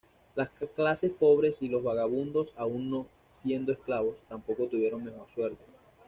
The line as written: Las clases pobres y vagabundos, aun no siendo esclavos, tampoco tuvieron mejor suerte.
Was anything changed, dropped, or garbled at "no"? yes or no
no